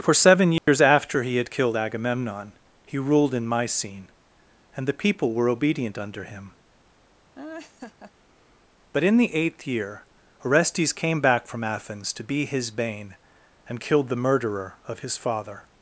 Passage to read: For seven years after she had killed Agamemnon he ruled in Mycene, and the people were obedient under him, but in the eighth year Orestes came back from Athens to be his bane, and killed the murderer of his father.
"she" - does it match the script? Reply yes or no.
no